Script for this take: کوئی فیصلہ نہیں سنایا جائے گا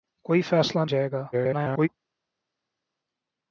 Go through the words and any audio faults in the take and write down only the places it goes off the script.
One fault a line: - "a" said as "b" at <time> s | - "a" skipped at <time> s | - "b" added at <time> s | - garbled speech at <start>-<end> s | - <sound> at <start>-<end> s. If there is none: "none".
- "نہیں سنایا" skipped at 0.9 s
- garbled speech at 1.3-1.9 s